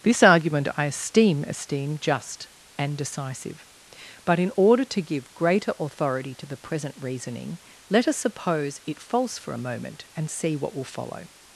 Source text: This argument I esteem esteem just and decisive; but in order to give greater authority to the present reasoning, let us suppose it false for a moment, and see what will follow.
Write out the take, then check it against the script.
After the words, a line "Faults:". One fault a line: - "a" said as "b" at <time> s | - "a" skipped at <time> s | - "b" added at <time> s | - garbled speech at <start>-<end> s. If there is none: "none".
This argument I esteem esteem just and decisive; but in order to give greater authority to the present reasoning, let us suppose it false for a moment, and see what will follow.
Faults:
none